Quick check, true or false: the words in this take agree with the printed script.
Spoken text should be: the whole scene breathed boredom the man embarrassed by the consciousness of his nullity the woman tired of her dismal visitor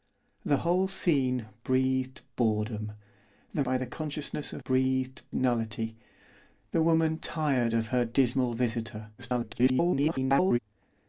false